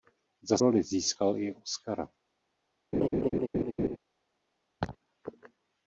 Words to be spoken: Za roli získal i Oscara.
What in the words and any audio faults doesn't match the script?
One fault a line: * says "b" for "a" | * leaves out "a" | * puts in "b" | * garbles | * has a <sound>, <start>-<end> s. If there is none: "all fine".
* has a laugh, 2.9-4.0 s
* has a laugh, 4.8-5.0 s